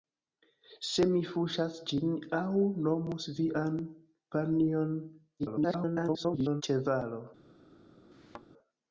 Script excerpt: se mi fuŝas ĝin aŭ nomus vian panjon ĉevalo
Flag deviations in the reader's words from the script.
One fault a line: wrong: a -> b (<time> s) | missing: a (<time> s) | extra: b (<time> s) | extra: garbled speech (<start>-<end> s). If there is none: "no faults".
extra: garbled speech (5.4-6.6 s)